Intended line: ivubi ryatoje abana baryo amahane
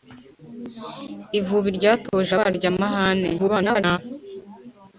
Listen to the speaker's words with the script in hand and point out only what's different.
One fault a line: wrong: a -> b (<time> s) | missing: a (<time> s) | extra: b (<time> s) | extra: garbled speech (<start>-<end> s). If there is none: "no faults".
missing: abana (2.3 s)
extra: garbled speech (3.4-4.0 s)